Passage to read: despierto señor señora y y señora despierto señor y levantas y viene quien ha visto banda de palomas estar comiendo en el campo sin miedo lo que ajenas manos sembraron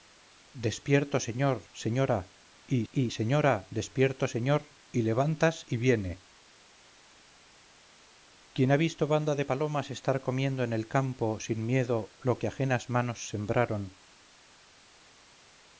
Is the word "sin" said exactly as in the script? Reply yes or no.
yes